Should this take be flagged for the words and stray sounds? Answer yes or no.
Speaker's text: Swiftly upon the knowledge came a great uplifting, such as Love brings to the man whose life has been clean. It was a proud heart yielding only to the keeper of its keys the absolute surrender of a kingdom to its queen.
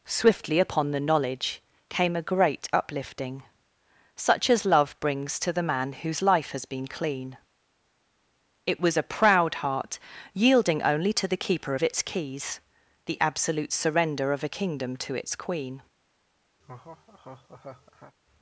yes